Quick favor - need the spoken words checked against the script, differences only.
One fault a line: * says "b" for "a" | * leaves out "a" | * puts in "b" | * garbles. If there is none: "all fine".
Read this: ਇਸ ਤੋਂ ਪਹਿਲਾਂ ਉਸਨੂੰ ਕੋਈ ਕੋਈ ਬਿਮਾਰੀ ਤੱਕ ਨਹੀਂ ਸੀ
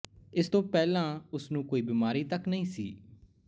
* leaves out "ਕੋਈ"